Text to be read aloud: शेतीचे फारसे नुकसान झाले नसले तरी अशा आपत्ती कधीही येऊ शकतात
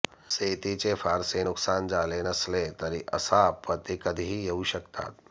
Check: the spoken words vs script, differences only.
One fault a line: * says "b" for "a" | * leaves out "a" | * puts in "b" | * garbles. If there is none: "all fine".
all fine